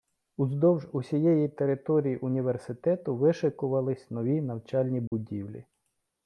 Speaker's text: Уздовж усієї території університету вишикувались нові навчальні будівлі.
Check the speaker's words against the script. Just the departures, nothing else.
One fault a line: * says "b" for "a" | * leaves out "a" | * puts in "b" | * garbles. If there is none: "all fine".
all fine